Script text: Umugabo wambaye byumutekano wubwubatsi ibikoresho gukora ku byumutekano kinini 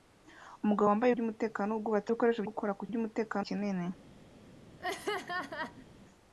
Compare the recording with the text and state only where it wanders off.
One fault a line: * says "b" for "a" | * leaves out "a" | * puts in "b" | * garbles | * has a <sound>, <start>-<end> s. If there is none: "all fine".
* has a laugh, 4.8-5.9 s